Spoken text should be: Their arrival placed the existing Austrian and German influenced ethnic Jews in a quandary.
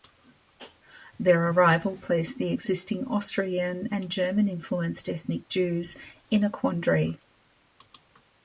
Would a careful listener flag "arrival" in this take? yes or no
no